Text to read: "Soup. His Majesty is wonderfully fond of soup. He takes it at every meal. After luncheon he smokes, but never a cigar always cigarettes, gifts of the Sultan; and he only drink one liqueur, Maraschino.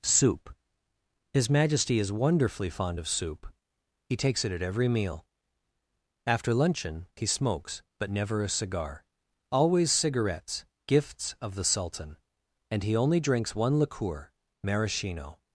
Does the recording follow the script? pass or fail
fail